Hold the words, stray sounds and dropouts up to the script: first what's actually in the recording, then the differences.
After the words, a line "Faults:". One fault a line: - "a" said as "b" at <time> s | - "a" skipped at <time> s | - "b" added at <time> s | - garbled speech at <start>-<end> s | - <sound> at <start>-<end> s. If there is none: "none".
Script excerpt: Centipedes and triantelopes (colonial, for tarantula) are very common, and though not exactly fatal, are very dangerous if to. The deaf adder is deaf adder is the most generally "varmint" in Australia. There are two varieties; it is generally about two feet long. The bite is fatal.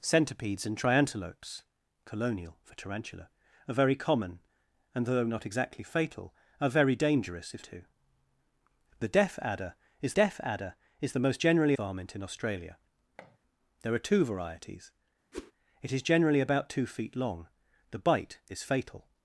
Centipedes and triantelopes (colonial, for tarantula) are very common, and though not exactly fatal, are very dangerous if to. The deaf adder is deaf adder is the most generally "varmint" in Australia. There are two varieties; it is generally about two feet long. The bite is fatal.
Faults:
- thud at 13.2-13.4 s
- whoosh at 15.3-15.5 s